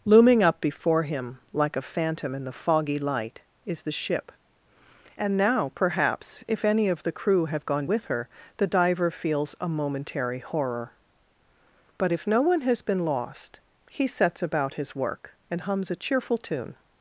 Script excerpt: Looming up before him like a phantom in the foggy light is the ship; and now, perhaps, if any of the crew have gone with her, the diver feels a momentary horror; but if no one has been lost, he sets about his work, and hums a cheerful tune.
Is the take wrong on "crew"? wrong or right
right